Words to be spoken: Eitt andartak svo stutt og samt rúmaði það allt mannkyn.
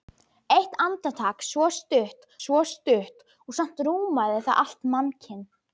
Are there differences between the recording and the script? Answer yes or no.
yes